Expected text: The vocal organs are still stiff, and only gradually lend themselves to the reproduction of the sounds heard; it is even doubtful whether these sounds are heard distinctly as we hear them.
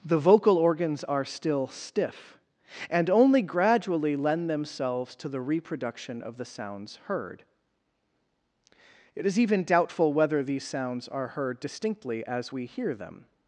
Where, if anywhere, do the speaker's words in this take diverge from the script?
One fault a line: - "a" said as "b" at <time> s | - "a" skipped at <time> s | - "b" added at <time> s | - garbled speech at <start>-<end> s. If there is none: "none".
none